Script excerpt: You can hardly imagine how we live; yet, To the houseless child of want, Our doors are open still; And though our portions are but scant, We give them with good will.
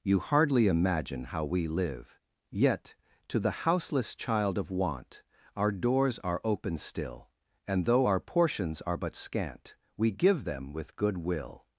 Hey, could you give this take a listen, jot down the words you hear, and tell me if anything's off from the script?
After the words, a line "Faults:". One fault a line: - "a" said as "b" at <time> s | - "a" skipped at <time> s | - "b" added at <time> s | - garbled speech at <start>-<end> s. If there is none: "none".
You hardly imagine how we live; yet, To the houseless child of want, Our doors are open still; And though our portions are but scant, We give them with good will.
Faults:
- "can" skipped at 0.2 s